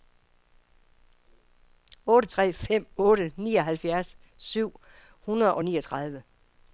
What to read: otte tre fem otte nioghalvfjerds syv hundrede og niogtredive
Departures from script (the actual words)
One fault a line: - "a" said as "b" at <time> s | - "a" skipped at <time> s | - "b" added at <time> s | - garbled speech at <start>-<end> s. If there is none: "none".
none